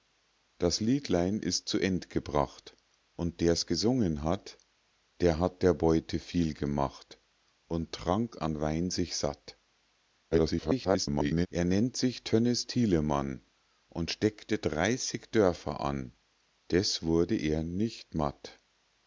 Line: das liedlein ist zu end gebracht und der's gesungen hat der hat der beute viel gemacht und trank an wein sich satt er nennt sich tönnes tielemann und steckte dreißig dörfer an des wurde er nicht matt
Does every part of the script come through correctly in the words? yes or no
no